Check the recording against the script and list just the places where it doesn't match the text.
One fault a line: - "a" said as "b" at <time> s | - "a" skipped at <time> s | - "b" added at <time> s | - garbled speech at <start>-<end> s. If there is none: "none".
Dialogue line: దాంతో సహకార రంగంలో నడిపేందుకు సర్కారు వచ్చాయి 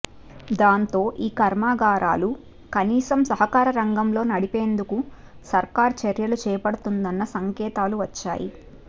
- "ఈ కర్మాగారాలు కనీసం" added at 1.2 s
- "చర్యలు చేపడుతుందన్న సంకేతాలు" added at 6.0 s